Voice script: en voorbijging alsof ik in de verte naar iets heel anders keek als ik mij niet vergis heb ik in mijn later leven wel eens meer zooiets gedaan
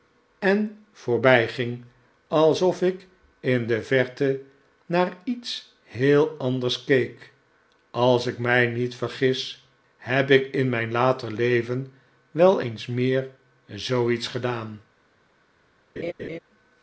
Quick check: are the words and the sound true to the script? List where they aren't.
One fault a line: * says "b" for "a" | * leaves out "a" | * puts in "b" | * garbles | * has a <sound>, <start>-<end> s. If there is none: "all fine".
* has a laugh, 16.0-16.4 s